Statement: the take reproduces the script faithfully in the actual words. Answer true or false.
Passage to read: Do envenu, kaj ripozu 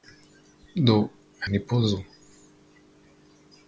false